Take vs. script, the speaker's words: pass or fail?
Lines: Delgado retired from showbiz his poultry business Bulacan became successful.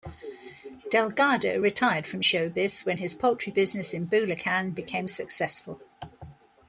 fail